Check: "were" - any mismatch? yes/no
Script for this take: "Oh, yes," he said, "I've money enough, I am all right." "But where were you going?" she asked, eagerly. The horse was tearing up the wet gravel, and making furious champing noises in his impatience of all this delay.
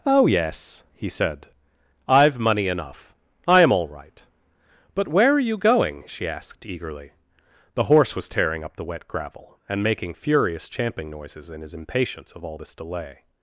yes